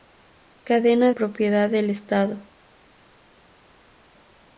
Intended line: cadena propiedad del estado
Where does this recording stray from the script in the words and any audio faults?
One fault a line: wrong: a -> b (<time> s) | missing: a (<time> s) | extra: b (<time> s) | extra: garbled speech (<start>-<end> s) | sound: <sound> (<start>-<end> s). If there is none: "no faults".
no faults